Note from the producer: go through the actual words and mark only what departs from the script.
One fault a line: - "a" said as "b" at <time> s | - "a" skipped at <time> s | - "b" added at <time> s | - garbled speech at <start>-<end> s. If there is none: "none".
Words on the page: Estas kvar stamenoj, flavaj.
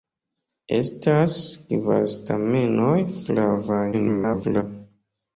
- garbled speech at 3.9-4.6 s